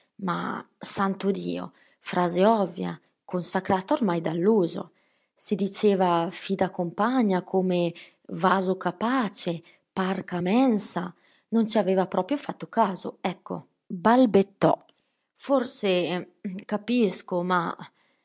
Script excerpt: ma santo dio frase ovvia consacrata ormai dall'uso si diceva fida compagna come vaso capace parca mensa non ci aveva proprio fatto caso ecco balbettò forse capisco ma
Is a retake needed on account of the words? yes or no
no